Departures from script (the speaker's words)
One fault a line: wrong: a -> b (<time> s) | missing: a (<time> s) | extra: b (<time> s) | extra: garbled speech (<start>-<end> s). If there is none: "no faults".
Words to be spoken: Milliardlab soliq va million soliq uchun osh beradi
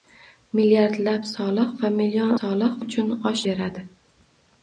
no faults